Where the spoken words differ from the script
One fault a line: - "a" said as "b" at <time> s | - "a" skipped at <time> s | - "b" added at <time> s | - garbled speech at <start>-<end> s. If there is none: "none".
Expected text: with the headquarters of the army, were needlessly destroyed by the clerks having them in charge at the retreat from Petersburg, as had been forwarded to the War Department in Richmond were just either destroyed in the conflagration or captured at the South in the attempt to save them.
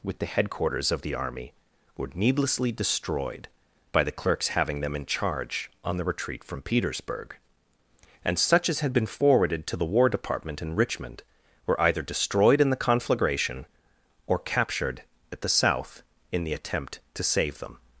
- "at" said as "on" at 5.8 s
- "and such" added at 8.2 s
- "just" skipped at 11.8 s